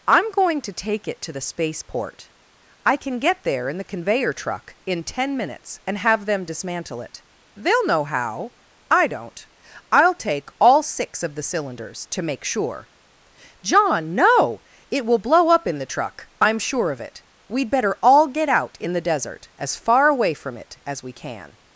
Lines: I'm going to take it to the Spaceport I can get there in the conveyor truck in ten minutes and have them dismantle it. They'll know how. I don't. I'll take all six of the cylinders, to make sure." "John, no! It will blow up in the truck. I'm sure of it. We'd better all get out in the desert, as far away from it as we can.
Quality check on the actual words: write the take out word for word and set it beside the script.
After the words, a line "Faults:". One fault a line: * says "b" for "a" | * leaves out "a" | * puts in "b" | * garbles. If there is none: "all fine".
I'm going to take it to the Spaceport I can get there in the conveyor truck in ten minutes and have them dismantle it. They'll know how. I don't. I'll take all six of the cylinders, to make sure." "John, no! It will blow up in the truck. I'm sure of it. We'd better all get out in the desert, as far away from it as we can.
Faults:
all fine